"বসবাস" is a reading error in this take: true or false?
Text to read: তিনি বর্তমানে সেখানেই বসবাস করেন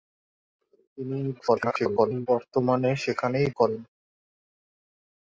true